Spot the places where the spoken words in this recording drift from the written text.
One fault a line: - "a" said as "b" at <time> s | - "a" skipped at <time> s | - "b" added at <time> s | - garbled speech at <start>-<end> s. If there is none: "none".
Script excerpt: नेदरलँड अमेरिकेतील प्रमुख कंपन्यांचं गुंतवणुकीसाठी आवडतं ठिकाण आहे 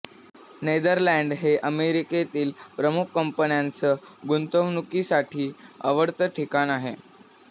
- "हे" added at 1.4 s